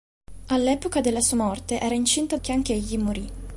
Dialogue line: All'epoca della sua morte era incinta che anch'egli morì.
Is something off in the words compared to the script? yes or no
no